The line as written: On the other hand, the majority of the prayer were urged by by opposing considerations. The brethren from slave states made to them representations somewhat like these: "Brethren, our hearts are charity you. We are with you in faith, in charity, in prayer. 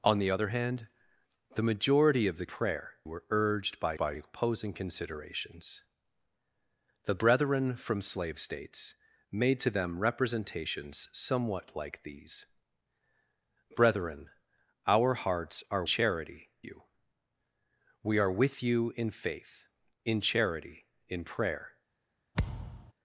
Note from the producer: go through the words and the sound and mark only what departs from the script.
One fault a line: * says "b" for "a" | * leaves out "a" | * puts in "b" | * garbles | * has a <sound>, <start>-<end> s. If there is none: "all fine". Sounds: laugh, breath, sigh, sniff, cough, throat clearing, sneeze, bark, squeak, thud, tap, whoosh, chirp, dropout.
* has a thud, 22.3-22.9 s